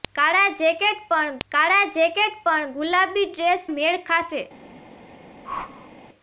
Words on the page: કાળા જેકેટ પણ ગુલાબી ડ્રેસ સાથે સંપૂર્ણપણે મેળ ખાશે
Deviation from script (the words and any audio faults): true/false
true